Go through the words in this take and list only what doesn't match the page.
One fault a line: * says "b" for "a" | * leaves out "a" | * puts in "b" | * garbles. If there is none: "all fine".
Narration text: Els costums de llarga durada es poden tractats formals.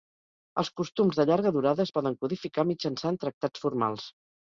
* puts in "codificar mitjançant"